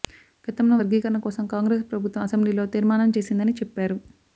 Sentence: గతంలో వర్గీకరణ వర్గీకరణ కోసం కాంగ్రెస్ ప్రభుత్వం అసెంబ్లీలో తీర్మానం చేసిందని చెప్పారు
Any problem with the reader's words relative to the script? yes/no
yes